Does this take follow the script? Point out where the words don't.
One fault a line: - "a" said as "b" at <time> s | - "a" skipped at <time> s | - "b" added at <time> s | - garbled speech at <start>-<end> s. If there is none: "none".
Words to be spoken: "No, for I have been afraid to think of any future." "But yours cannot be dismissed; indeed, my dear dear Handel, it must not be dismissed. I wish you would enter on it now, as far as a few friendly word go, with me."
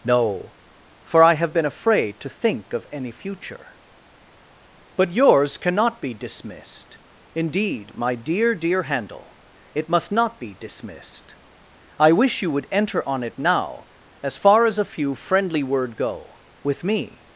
none